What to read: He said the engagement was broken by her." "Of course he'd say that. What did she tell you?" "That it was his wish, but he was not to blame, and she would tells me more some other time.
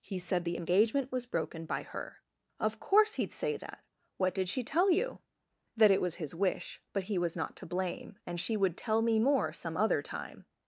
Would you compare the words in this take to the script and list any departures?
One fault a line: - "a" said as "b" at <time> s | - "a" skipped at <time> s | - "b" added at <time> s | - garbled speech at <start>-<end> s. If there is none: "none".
- "tells" said as "tell" at 8.8 s